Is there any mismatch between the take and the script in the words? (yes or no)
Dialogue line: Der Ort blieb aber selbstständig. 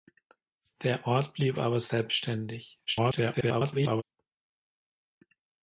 yes